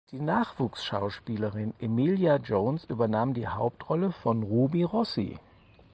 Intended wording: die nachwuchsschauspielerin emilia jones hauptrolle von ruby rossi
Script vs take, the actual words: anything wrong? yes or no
yes